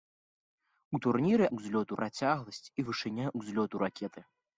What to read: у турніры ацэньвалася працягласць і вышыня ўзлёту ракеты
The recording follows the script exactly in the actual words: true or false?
false